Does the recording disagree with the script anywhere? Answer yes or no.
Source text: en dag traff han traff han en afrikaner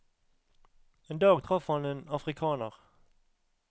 yes